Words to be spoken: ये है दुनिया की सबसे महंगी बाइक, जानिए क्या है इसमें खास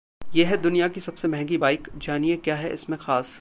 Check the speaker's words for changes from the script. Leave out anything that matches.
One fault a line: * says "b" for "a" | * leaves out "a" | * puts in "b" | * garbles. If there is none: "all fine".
all fine